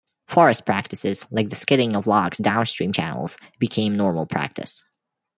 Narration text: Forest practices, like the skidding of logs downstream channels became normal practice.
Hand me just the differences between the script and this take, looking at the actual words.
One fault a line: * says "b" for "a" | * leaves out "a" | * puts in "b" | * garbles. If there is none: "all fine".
all fine